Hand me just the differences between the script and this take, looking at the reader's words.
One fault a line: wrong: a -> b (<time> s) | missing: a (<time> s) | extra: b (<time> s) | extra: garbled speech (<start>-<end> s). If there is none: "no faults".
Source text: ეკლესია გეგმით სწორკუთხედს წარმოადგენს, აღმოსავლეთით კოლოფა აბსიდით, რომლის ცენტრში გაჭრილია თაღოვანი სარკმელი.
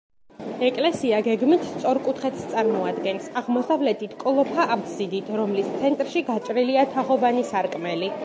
no faults